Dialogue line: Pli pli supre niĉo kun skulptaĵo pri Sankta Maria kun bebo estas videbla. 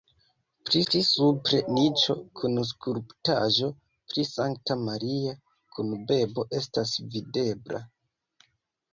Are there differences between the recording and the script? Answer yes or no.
no